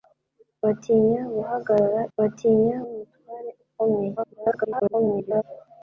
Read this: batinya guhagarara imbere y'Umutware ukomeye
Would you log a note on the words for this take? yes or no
yes